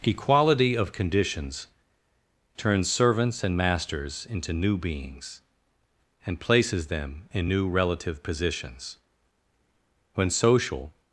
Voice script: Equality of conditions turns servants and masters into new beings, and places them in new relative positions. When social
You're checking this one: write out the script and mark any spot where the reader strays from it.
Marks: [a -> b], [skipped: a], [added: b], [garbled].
Equality of conditions turns servants and masters into new beings, and places them in new relative positions. When social